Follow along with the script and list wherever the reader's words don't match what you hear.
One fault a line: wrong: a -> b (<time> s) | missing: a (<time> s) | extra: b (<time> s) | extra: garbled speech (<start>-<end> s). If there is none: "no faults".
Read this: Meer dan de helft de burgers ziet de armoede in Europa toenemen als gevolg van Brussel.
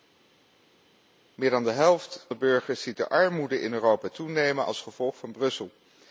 no faults